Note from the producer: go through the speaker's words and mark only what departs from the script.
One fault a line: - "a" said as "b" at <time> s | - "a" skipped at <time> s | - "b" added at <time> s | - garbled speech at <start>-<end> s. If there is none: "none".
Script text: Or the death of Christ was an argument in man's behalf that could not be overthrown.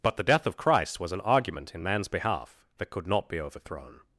- "Or" said as "But" at 0.0 s